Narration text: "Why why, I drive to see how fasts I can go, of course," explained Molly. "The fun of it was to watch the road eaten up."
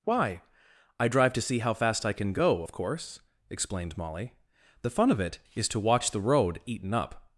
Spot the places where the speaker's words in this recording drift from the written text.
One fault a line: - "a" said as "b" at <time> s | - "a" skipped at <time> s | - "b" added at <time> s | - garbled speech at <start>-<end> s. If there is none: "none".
- "why" skipped at 0.4 s
- "fasts" said as "fast" at 1.8 s
- "was" said as "is" at 5.6 s